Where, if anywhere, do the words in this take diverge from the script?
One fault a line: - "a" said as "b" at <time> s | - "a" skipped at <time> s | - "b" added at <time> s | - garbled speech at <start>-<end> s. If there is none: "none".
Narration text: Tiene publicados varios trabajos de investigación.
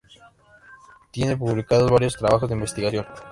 none